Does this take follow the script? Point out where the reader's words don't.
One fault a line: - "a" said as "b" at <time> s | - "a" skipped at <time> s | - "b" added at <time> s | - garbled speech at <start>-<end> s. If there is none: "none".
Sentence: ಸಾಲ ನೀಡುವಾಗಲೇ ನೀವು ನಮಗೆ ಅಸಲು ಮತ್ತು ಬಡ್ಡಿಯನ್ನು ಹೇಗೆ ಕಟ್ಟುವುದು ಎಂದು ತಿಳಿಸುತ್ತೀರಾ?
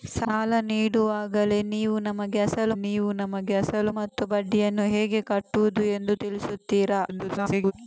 - "ನೀವು ನಮಗೆ ಅಸಲು" added at 2.8 s
- garbled speech at 7.1-7.7 s